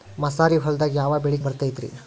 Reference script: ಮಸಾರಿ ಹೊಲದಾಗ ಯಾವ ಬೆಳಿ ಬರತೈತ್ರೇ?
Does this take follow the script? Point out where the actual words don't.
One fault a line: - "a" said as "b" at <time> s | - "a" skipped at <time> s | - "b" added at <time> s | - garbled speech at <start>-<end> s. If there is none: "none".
none